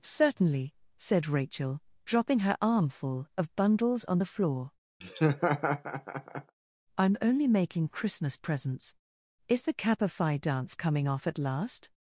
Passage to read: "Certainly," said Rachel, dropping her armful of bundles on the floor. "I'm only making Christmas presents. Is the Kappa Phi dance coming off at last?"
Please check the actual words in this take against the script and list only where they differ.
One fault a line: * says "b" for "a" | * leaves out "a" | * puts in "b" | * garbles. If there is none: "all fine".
all fine